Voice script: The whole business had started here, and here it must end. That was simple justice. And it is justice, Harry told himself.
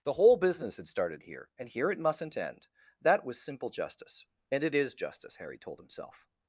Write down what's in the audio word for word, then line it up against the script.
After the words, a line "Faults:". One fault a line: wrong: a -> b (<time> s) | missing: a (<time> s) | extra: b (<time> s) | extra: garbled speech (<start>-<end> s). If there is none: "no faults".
The whole business had started here, and here it mustn't end. That was simple justice. And it is justice, Harry told himself.
Faults:
wrong: must -> mustn't (2.0 s)